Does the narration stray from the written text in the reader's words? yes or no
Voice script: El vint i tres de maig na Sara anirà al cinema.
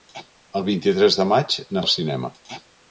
yes